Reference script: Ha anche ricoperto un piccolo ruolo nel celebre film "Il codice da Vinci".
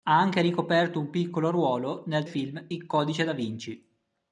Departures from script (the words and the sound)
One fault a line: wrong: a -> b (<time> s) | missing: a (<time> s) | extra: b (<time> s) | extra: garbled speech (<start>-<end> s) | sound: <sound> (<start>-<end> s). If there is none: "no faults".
missing: celebre (2.2 s)